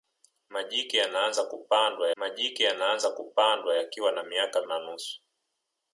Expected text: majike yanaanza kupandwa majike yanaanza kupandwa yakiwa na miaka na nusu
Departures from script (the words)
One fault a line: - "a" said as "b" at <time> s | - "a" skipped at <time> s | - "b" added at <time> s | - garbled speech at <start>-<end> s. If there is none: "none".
none